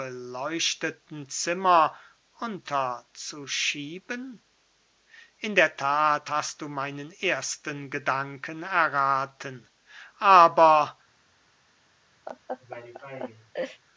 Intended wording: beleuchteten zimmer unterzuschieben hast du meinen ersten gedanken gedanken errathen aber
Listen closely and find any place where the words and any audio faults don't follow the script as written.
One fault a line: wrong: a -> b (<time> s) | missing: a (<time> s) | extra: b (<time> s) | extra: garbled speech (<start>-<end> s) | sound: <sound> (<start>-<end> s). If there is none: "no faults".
extra: in der that (5.4 s)
missing: gedanken (8.6 s)
sound: laugh (12.3-13.8 s)